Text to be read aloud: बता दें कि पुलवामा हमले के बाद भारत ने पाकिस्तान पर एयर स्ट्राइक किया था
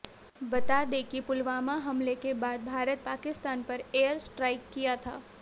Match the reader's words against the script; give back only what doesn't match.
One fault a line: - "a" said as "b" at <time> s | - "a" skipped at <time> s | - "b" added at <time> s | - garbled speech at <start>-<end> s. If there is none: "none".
- "ने" skipped at 3.0 s